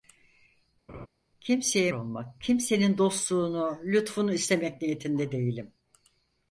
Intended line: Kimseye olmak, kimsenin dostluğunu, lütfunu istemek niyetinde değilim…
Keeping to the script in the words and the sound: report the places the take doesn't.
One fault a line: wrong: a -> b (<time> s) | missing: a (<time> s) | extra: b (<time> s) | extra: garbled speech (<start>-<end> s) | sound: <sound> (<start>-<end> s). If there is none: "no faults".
sound: laugh (0.9-1.1 s)